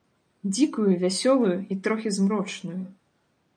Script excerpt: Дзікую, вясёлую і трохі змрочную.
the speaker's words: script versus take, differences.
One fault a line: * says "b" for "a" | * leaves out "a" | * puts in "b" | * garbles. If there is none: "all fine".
all fine